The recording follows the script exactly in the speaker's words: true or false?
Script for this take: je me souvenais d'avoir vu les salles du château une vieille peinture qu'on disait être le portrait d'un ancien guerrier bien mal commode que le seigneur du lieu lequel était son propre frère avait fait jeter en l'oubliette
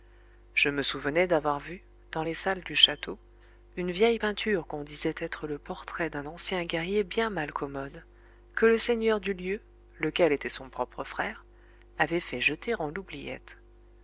false